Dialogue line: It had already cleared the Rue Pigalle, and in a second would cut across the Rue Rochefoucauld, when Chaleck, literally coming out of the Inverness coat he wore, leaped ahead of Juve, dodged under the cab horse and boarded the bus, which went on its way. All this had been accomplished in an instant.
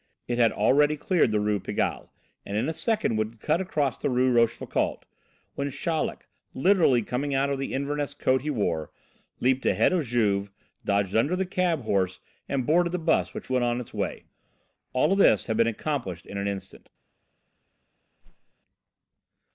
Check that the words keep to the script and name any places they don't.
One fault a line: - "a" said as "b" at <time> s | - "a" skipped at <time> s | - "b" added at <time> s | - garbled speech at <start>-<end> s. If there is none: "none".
none